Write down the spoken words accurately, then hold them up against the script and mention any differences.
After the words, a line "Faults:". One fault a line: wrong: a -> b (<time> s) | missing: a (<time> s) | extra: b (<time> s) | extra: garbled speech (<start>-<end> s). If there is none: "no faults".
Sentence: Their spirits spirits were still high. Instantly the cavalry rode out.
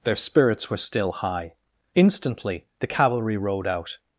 Their spirits were still high. Instantly the cavalry rode out.
Faults:
missing: spirits (0.7 s)